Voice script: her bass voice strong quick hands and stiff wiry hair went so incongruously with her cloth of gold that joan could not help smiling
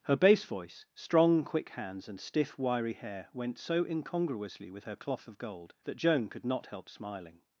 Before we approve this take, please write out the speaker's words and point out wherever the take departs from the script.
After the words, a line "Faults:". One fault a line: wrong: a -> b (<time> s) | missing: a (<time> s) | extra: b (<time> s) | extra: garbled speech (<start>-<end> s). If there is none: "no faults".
her bass voice strong quick hands and stiff wiry hair went so incongruously with her cloth of gold that joan could not help smiling
Faults:
no faults